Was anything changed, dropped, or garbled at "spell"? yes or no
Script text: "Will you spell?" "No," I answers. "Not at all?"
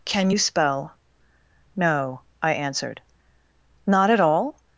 no